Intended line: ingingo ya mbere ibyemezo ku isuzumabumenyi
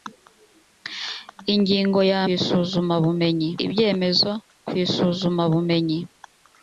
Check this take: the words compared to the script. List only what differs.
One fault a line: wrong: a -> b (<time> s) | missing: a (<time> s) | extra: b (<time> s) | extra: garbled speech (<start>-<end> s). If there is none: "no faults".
wrong: mbere -> isuzumabumenyi (2.3 s)